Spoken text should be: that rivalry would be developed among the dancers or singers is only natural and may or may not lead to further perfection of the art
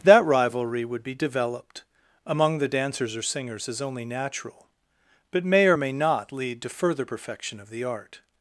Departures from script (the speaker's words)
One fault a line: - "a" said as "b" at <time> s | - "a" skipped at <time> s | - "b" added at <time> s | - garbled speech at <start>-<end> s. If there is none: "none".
- "and" said as "but" at 5.3 s